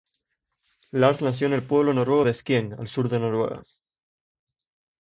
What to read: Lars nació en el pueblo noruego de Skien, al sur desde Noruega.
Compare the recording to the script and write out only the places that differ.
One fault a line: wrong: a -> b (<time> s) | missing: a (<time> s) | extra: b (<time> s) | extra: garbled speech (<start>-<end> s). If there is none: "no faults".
wrong: desde -> de (3.1 s)